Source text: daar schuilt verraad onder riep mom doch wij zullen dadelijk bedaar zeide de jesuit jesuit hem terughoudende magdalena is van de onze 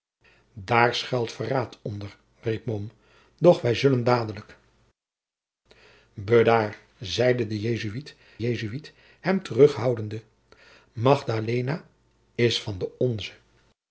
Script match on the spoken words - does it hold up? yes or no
yes